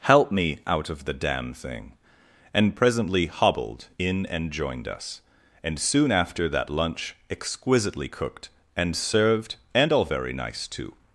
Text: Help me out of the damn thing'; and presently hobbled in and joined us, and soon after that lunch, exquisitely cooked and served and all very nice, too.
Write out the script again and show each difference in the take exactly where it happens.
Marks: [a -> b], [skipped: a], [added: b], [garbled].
Help me out of the damn thing'; and presently hobbled in and joined us, and soon after that lunch, exquisitely cooked and served and all very nice, too.